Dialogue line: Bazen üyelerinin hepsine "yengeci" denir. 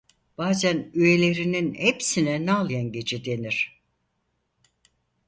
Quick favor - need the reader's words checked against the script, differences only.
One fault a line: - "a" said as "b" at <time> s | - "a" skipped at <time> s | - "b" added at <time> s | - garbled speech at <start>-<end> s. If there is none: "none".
- "nal" added at 2.5 s